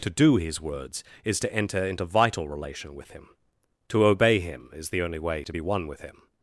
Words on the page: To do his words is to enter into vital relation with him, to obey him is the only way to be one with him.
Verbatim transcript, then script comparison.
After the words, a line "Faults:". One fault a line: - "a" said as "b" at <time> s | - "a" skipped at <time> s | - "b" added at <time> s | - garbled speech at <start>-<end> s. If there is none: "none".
To do his words is to enter into vital relation with him, to obey him is the only way to be one with him.
Faults:
none